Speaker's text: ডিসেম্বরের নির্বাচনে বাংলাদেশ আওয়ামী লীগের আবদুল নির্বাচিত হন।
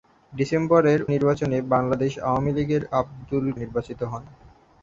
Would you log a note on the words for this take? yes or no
no